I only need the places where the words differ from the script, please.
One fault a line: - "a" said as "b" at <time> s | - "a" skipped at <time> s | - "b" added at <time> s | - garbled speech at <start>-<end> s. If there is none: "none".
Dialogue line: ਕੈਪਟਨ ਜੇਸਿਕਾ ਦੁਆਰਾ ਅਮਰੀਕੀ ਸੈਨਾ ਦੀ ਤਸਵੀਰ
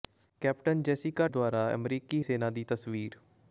none